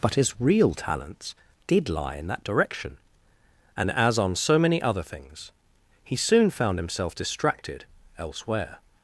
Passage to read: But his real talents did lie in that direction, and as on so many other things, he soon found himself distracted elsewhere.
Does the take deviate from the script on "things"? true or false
false